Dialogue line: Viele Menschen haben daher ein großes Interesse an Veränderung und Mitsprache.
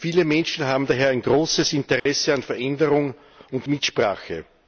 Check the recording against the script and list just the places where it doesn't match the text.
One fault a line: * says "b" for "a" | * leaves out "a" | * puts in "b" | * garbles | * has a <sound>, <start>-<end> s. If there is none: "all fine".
* has a dropout, 2.0-2.1 s